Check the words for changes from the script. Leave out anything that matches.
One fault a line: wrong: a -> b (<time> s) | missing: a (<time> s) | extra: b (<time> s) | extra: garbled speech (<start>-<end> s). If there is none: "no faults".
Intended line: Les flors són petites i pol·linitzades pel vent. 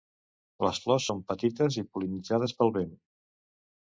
no faults